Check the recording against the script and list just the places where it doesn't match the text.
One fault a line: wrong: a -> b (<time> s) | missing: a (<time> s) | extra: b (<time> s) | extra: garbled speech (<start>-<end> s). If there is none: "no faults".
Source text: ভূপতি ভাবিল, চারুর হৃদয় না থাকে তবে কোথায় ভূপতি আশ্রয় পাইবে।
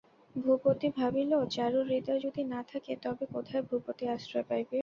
extra: যদি (2.2 s)